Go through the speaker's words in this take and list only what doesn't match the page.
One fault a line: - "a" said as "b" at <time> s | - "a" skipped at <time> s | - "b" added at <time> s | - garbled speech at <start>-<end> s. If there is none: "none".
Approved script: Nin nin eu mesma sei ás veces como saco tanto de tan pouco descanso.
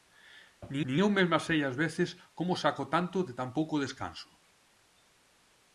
none